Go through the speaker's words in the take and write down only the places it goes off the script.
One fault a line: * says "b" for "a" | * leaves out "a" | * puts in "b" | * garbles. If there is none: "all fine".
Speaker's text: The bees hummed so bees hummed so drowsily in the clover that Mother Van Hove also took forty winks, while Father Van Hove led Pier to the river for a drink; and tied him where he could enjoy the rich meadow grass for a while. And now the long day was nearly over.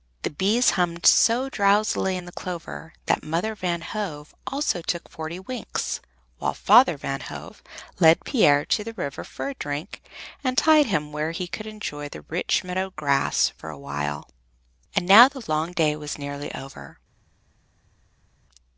* leaves out "bees hummed so"